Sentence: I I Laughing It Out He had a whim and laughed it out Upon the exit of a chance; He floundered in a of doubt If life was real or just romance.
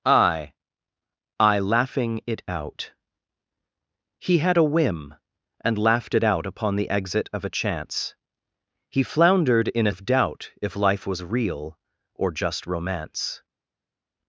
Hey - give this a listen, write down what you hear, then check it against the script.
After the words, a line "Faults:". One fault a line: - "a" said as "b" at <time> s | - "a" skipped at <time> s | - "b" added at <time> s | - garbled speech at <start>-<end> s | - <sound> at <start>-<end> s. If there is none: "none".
I I Laughing It Out He had a whim and laughed it out Upon the exit of a chance; He floundered in a of doubt If life was real or just romance.
Faults:
none